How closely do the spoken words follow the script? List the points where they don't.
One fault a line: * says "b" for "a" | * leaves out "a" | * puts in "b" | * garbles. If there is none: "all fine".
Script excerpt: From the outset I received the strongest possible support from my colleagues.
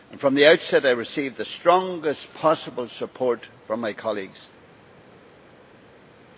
all fine